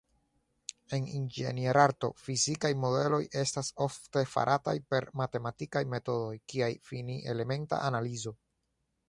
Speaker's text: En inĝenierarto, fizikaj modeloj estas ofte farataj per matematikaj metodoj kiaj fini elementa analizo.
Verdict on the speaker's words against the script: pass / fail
pass